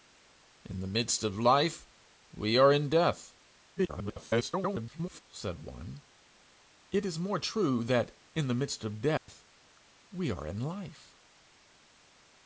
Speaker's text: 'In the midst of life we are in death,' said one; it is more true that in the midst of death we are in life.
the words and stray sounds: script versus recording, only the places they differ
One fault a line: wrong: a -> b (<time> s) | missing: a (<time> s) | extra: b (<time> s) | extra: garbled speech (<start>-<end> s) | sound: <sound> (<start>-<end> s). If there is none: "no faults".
extra: garbled speech (3.8-5.2 s)
sound: dropout (9.2-9.3 s)